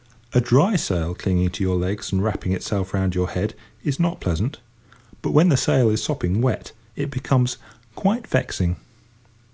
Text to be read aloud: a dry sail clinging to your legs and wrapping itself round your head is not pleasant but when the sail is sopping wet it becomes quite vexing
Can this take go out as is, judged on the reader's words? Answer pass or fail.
pass